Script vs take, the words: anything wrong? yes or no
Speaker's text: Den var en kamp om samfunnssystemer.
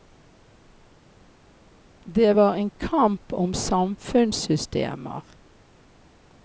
yes